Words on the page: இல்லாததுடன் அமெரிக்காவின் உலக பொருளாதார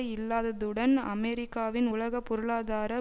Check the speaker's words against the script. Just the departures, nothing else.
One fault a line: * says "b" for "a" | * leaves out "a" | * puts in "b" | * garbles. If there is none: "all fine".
all fine